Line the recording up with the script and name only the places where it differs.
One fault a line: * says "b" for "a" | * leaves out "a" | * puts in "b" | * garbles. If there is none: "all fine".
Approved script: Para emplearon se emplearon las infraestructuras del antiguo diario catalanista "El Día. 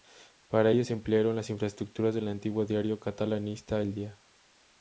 * says "ello" for "emplearon"